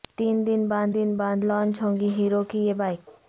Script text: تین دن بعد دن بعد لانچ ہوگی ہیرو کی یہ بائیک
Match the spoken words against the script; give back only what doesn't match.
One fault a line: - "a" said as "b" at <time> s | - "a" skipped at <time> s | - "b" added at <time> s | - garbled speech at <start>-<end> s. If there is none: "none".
none